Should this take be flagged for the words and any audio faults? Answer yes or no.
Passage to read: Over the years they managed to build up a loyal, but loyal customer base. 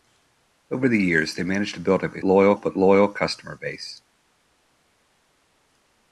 no